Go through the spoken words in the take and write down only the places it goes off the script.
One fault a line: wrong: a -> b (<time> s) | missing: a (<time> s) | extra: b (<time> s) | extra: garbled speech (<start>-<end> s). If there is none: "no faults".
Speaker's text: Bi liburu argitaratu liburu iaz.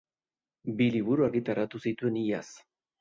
wrong: liburu -> zituen (1.9 s)